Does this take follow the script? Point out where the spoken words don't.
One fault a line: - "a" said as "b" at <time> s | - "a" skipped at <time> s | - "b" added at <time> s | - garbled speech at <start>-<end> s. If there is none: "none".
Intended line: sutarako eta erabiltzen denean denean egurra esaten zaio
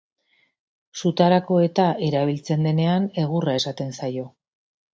- "denean" skipped at 3.1 s